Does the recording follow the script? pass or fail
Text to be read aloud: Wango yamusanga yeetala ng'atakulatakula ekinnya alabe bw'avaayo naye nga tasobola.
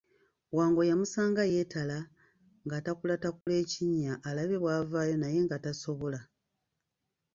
pass